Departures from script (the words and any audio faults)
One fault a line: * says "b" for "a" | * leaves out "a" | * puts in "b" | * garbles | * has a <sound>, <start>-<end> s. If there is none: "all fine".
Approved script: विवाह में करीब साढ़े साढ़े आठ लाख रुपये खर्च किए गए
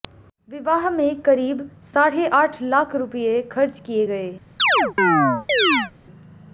* leaves out "साढ़े"
* has a chirp, 4.6-5.9 s